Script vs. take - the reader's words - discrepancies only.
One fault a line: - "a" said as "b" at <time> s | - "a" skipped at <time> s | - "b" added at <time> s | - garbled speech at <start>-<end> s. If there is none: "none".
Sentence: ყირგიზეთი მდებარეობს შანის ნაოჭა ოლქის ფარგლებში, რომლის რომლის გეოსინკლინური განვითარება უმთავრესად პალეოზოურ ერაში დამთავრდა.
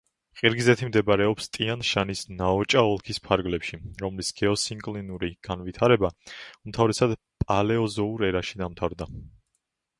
- "ტიან" added at 1.6 s
- "რომლის" skipped at 4.3 s